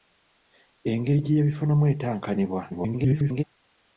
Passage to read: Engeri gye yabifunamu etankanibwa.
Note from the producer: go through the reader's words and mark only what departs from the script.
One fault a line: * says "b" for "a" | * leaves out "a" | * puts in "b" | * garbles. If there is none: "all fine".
* garbles